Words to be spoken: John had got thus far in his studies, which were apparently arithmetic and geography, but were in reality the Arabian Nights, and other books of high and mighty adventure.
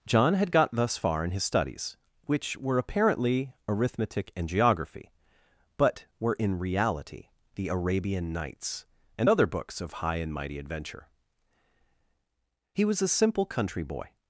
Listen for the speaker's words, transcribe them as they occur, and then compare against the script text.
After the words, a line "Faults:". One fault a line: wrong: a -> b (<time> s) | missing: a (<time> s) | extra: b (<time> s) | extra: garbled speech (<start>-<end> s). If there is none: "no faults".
John had got thus far in his studies, which were apparently arithmetic and geography, but were in reality the Arabian Nights, and other books of high and mighty adventure. He was a simple country boy
Faults:
extra: He was a simple country boy (12.7 s)